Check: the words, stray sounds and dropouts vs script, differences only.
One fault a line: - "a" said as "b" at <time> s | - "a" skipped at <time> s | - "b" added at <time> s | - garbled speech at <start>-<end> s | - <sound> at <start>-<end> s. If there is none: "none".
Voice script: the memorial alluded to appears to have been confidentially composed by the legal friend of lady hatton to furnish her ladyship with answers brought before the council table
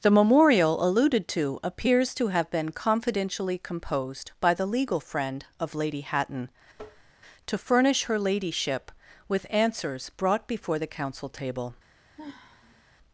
- tap at 6.7-7.1 s
- sigh at 12.2-12.8 s